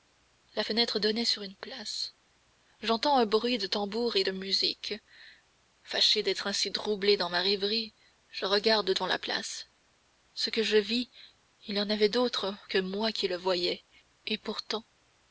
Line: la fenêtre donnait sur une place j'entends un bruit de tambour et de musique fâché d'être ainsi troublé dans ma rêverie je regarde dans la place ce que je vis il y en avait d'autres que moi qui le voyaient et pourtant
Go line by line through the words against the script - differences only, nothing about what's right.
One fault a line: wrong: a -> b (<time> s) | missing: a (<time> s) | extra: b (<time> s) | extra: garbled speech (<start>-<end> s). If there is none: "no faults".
no faults